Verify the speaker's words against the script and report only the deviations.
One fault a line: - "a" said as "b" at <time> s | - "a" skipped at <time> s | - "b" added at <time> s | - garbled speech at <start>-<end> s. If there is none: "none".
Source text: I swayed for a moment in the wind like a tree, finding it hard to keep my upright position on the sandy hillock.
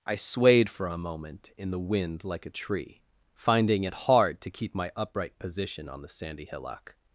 none